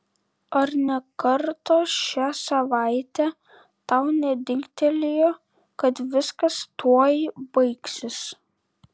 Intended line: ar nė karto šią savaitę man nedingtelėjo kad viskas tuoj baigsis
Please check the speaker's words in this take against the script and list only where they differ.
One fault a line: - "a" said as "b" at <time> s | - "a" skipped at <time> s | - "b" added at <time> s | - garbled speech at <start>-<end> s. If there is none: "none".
- "man" said as "tau" at 3.9 s